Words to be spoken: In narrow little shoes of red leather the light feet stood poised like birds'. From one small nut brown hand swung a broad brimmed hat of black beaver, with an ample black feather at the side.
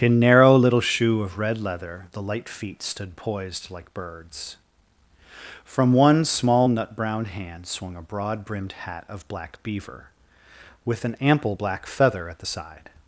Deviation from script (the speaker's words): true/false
true